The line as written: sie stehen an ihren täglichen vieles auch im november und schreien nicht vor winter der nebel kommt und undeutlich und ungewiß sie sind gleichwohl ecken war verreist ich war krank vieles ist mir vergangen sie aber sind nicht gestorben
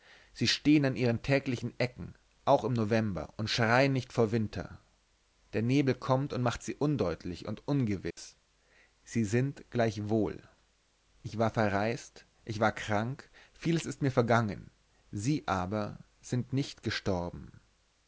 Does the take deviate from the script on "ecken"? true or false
true